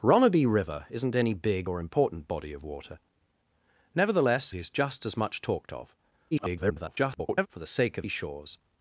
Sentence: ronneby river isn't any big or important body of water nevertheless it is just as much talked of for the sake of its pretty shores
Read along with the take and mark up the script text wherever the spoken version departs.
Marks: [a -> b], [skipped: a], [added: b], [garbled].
ronneby river isn't any big or important body of water nevertheless [skipped: it] is just as much talked of [garbled] for the sake of [skipped: its pretty] shores